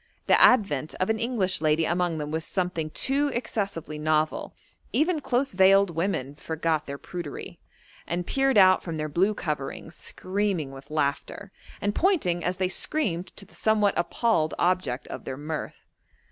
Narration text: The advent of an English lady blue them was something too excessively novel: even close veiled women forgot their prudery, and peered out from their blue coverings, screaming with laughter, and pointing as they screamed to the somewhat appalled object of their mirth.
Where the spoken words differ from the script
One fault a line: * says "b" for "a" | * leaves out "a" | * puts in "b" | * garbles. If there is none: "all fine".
* says "among" for "blue"